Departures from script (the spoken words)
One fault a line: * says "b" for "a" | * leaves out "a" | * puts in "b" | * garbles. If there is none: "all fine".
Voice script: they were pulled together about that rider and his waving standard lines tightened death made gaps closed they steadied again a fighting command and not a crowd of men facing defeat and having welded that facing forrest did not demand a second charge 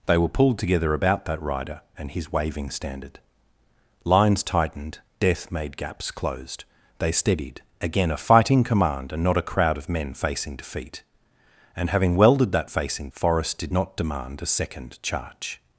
all fine